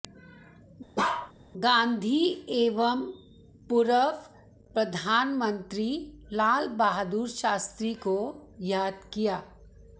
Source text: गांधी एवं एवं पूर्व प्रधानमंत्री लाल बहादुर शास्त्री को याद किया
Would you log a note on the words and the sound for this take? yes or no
yes